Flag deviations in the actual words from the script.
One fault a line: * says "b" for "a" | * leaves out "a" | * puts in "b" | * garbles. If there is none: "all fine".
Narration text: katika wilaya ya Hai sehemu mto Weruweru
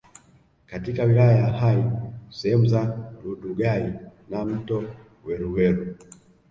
* puts in "za Rundugai na"